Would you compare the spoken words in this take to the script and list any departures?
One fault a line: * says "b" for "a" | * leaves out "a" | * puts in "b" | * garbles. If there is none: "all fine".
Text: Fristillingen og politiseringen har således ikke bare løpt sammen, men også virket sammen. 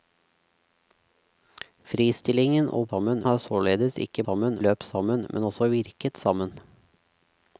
* says "sammen" for "politiseringen"
* says "sammen" for "bare"